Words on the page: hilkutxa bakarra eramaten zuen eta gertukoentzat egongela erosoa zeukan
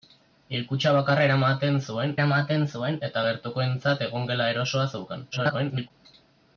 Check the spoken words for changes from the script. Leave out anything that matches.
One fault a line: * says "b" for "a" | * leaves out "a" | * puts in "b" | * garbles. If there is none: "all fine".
* puts in "eramaten zuen"
* garbles